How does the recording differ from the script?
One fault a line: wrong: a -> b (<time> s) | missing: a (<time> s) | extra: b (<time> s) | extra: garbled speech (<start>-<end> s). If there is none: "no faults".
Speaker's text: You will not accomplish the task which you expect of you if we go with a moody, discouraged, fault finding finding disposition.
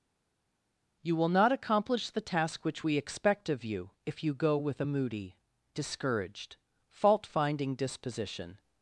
wrong: you -> we (2.8 s)
wrong: we -> you (4.2 s)
missing: finding (7.7 s)